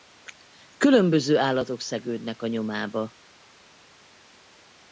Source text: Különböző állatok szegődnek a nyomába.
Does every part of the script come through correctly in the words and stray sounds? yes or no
yes